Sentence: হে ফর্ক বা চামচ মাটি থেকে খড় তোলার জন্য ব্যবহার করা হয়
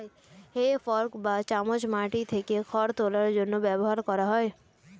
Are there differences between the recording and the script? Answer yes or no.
no